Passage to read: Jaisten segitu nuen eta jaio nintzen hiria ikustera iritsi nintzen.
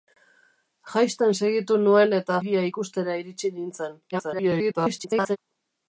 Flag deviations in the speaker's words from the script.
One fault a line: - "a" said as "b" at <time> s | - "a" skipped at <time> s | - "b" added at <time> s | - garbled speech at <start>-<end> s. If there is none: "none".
- "jaio nintzen" skipped at 2.4 s
- garbled speech at 4.1-5.4 s